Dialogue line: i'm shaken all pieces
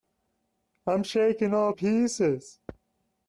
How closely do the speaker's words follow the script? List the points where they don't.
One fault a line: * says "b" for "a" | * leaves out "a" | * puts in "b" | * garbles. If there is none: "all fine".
all fine